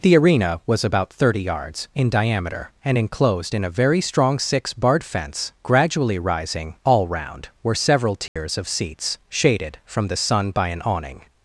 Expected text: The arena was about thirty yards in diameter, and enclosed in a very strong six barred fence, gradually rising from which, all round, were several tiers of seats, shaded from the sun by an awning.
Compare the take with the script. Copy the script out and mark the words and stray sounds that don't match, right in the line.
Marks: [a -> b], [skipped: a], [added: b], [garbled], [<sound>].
The arena was about thirty yards in diameter, and enclosed in a very strong six barred fence, gradually rising [skipped: from which,] all round, were several tiers [dropout] of seats, shaded from the sun by an awning.